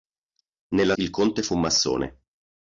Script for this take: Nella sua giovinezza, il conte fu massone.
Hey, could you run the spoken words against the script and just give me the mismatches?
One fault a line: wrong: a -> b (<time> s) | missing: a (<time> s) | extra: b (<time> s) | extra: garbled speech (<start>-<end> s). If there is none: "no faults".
missing: sua giovinezza (0.9 s)